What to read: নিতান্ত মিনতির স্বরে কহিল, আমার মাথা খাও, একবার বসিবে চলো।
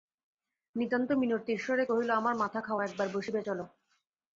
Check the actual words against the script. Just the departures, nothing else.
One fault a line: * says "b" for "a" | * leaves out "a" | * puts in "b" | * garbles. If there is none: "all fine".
all fine